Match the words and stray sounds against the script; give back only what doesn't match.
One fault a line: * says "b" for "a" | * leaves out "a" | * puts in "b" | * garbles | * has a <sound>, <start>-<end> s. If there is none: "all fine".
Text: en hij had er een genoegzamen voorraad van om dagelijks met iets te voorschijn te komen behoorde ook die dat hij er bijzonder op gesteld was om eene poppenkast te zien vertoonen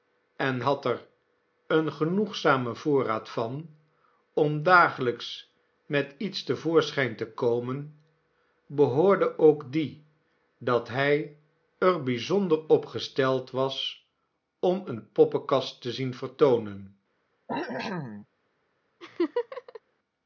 * leaves out "hij"
* has a cough, 17.5-18.3 s
* has a laugh, 19.0-19.8 s